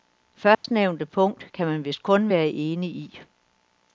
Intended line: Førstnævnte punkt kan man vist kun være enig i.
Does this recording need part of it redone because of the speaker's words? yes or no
no